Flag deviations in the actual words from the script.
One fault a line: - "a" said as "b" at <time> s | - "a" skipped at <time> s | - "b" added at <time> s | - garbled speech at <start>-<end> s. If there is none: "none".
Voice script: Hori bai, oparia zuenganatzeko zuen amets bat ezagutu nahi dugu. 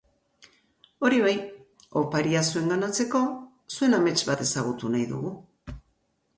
none